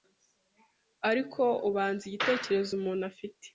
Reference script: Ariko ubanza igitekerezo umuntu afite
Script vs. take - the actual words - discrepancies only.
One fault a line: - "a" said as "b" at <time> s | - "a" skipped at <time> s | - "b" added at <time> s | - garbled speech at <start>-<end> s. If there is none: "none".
none